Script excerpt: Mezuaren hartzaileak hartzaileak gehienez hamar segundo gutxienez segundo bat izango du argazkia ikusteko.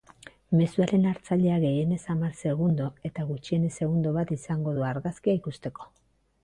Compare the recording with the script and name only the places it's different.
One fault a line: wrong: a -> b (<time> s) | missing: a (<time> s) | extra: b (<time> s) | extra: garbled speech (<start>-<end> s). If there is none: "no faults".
missing: hartzaileak (1.6 s)
extra: eta (3.1 s)